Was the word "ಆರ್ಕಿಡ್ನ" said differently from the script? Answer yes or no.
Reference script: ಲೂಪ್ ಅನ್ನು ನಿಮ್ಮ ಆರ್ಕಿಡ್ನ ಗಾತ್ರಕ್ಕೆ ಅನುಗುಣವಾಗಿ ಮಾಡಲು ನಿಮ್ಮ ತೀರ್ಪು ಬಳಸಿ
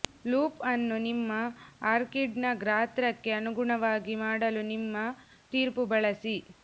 no